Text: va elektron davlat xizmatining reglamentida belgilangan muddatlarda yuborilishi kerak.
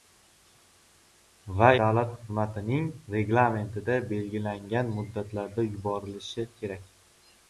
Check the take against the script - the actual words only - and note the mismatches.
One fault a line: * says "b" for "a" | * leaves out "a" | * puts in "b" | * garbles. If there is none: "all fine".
* leaves out "elektron"